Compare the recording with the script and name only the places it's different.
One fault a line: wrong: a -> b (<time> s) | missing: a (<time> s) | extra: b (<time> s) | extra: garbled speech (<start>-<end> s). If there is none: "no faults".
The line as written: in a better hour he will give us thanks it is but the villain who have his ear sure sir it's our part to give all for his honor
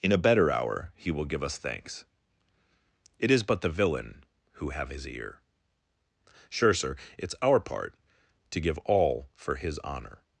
no faults